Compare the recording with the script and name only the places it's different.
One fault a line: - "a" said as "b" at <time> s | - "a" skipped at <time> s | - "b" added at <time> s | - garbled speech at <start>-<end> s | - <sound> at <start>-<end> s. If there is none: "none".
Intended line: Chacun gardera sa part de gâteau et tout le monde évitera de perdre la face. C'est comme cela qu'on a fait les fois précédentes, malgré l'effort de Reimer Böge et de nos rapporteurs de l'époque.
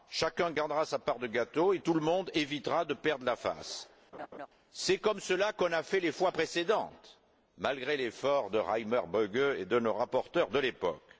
- laugh at 4.1-4.5 s